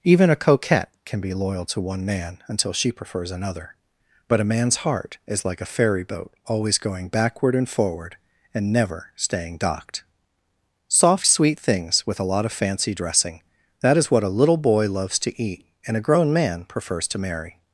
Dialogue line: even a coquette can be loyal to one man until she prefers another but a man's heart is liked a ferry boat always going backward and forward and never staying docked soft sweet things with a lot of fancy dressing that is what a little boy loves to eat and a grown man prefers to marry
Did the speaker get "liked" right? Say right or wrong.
wrong